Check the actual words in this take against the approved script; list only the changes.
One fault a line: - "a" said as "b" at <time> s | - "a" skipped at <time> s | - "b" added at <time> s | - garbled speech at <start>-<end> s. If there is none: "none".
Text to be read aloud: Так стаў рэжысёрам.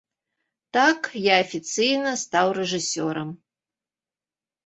- "я афіцыйна" added at 1.2 s